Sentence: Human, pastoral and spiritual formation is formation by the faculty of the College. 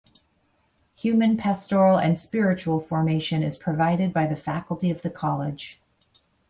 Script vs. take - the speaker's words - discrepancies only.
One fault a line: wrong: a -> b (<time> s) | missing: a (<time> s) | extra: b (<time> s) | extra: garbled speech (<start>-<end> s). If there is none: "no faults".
wrong: formation -> provided (3.6 s)